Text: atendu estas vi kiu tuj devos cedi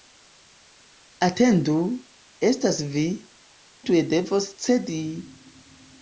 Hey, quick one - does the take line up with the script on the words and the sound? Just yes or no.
no